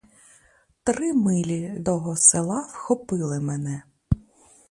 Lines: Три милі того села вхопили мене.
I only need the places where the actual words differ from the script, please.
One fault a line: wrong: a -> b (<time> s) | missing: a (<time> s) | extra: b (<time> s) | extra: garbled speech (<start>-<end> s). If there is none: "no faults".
no faults